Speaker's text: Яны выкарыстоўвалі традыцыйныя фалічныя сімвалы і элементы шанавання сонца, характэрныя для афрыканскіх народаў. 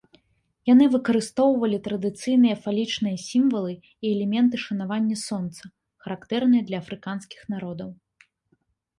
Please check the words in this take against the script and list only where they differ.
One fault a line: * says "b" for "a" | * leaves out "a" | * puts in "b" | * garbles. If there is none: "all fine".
all fine